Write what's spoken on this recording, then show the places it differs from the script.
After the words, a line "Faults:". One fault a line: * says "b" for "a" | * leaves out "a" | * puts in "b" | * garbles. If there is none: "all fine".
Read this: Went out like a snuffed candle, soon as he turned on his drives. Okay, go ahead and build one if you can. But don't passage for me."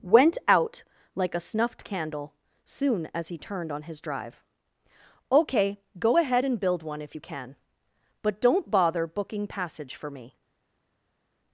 Went out like a snuffed candle, soon as he turned on his drive. Okay, go ahead and build one if you can. But don't bother booking passage for me."
Faults:
* says "drive" for "drives"
* puts in "bother booking"